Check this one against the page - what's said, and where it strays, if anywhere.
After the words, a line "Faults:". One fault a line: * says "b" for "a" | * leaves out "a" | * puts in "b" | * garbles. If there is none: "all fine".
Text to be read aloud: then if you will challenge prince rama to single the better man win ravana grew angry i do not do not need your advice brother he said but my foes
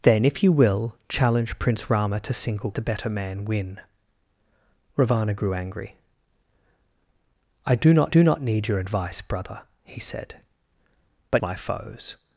then if you will challenge prince rama to single the better man win ravana grew angry i do not do not need your advice brother he said but my foes
Faults:
all fine